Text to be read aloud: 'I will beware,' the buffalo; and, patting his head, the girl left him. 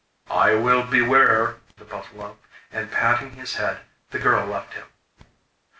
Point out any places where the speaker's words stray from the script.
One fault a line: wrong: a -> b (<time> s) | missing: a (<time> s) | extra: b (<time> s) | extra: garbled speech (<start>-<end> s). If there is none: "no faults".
no faults